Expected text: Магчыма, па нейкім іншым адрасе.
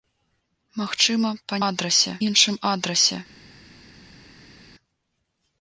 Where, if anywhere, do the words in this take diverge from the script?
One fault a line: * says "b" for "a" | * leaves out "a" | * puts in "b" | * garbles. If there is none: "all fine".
* says "адрасе" for "нейкім"